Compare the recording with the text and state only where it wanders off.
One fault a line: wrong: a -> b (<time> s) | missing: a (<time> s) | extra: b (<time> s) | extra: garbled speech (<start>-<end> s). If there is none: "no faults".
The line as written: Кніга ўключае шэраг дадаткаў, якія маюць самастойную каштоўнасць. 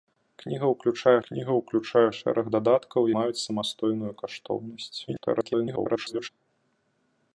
extra: кніга ўключае (1.3 s)
missing: якія (3.0 s)
extra: garbled speech (5.1-6.3 s)